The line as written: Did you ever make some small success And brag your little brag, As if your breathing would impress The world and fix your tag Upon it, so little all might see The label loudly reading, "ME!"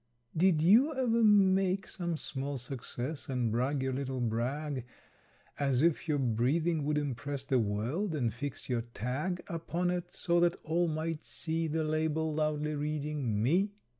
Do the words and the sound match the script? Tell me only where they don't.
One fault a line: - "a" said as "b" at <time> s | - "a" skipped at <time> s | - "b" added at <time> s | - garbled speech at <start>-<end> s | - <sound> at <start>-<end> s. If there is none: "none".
- "little" said as "that" at 10.4 s